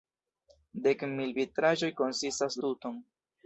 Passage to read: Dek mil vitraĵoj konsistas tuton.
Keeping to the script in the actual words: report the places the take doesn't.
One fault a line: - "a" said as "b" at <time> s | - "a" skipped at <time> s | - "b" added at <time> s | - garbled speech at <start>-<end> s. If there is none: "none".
none